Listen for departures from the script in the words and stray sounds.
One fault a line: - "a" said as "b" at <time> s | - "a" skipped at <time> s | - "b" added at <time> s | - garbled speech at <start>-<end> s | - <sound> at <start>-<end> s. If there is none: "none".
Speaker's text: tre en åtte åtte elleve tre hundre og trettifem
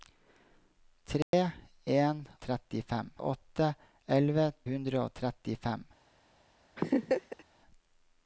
- dropout at 1.2-1.3 s
- "åtte" said as "trettifem" at 2.5 s
- "tre" skipped at 4.5 s
- laugh at 6.8-7.4 s